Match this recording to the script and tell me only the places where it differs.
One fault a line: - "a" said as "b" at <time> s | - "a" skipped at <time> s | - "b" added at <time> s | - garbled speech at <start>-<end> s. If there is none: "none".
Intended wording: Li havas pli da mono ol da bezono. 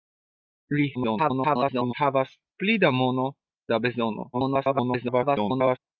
- garbled speech at 0.9-1.9 s
- "ol" skipped at 3.3 s
- garbled speech at 4.3-5.8 s